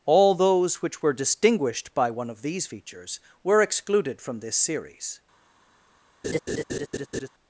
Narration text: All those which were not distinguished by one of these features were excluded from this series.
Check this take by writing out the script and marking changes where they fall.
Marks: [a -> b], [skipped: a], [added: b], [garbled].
All those which were [skipped: not] distinguished by one of these features were excluded from this series.